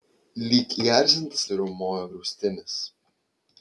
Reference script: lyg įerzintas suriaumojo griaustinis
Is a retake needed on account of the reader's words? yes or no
no